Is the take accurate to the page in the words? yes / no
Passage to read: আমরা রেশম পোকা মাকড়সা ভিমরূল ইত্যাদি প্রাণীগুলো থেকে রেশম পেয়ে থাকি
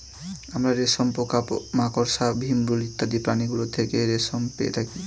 yes